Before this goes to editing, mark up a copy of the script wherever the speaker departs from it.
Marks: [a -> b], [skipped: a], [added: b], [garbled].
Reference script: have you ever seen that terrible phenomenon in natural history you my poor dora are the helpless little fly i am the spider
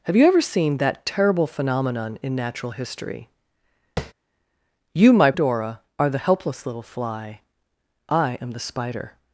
have you ever seen that terrible phenomenon in natural history you my [skipped: poor] dora are the helpless little fly i am the spider